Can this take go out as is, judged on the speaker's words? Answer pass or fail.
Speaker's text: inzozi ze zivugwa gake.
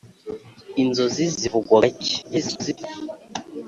fail